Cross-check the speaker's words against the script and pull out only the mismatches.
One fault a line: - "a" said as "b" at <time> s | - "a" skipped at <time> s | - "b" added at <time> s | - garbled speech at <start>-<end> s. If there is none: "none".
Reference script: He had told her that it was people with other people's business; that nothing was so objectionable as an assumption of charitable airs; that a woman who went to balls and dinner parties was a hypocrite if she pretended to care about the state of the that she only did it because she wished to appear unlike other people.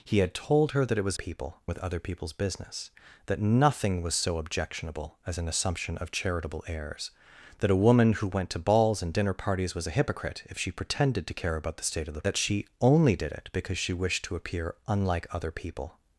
none